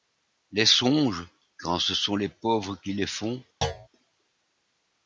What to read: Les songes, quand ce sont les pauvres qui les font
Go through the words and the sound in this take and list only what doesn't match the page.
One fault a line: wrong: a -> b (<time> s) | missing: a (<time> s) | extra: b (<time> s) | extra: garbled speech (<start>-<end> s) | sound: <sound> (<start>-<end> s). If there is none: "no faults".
sound: thud (3.6-3.9 s)